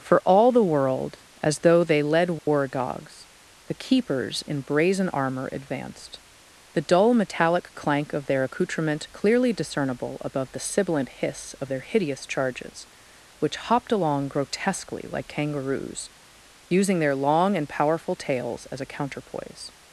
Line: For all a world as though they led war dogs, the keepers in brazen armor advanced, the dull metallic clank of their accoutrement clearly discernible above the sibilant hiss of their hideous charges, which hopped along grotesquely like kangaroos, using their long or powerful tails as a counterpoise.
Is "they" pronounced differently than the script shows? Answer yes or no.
no